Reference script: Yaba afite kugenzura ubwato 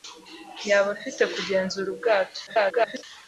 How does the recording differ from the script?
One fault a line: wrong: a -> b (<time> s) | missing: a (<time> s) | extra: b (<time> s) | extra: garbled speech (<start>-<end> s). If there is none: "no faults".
extra: garbled speech (2.5-3.0 s)